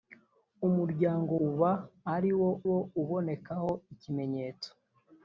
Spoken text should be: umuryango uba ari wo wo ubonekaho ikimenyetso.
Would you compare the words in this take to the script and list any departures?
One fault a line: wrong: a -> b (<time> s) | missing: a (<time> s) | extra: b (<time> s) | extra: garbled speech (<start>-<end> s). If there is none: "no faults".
no faults